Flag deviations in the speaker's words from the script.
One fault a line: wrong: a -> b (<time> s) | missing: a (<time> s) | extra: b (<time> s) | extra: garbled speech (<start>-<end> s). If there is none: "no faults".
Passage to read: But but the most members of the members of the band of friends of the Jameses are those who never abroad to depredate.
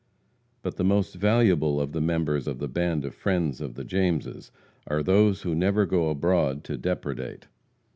missing: but (0.8 s)
wrong: members -> valuable (1.1 s)
extra: go (5.9 s)